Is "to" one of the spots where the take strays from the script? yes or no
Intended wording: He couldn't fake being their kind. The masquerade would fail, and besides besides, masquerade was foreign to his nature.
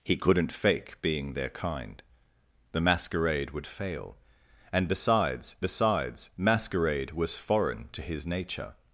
no